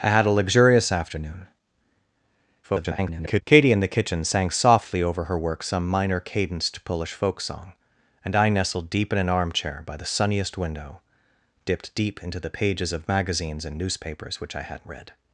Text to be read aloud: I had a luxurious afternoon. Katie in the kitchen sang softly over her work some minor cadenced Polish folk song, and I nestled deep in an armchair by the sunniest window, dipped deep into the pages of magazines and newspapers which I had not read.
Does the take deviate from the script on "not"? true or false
true